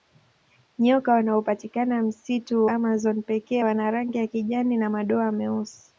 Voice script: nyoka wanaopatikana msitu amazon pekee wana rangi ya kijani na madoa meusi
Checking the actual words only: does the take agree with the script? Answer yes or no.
yes